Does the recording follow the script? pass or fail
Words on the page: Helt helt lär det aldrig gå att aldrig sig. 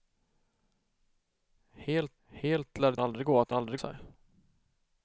pass